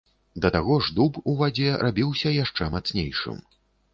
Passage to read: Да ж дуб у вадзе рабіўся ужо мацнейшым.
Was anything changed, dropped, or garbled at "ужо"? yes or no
yes